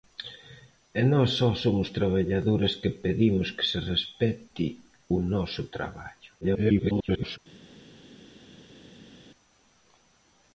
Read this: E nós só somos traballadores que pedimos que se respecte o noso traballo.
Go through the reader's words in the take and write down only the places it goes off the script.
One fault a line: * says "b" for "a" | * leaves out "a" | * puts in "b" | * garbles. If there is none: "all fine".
* garbles